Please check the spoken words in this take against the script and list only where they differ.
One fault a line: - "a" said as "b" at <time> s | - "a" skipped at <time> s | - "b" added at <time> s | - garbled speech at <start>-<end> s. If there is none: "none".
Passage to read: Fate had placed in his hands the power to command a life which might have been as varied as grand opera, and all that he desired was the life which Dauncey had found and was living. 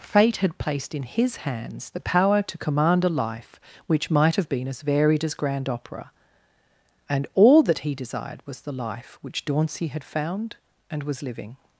none